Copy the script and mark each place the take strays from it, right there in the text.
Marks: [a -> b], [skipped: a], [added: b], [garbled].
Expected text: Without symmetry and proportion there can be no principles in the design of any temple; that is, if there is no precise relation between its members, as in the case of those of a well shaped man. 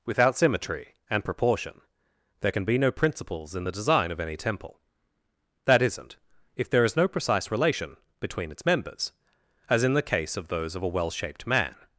Without symmetry and proportion there can be no principles in the design of any temple; that [is, -> isn't] if there is no precise relation between its members, as in the case of those of a well shaped man.